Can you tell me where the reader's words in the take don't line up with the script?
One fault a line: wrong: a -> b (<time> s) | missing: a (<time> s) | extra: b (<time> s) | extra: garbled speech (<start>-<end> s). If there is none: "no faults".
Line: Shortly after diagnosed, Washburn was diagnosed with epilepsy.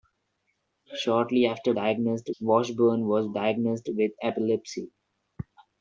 no faults